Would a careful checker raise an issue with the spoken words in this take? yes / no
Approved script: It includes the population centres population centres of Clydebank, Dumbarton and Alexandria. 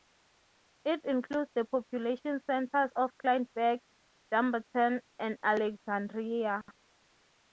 yes